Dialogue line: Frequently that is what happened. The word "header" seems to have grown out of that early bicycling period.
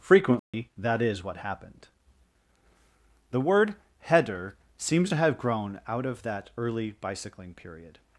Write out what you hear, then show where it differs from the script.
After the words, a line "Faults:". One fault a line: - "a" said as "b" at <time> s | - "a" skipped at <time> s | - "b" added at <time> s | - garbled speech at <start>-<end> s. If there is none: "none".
Frequently that is what happened. The word "header" seems to have grown out of that early bicycling period.
Faults:
none